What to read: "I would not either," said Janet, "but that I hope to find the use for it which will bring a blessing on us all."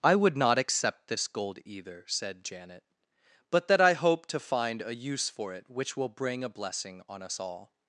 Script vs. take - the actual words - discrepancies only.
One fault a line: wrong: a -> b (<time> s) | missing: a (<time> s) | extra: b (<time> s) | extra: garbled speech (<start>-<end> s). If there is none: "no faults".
extra: accept this gold (0.6 s)
wrong: the -> a (4.8 s)